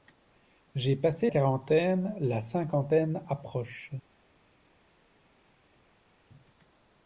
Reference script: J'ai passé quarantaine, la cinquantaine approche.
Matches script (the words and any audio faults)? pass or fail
pass